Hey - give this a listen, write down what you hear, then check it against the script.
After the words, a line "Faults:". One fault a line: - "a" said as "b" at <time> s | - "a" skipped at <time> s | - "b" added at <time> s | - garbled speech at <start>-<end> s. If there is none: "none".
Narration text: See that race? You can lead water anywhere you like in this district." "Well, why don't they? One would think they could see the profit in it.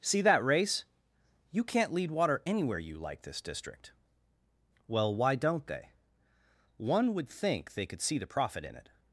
See that race? You can't lead water anywhere you like this district." "Well, why don't they? One would think they could see the profit in it.
Faults:
- "can" said as "can't" at 1.6 s
- "in" skipped at 3.2 s